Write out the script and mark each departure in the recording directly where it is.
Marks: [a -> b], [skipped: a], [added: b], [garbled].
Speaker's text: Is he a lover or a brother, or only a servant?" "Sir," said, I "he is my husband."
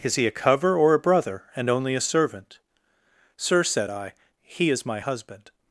Is he a [lover -> cover] or a brother, [or -> and] only a servant?" "Sir," said, I "he is my husband."